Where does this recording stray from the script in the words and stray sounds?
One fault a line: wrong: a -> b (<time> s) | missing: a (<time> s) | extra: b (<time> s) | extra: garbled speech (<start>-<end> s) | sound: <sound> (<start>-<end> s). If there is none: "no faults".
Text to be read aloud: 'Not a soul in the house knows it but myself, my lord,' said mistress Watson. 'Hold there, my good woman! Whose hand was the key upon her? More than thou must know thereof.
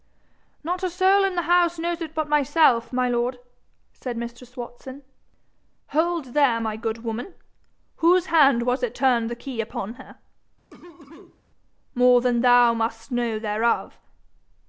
extra: it turned (8.8 s)
sound: cough (10.7-11.4 s)